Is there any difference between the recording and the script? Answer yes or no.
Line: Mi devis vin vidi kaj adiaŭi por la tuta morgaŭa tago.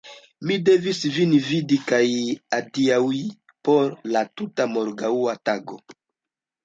no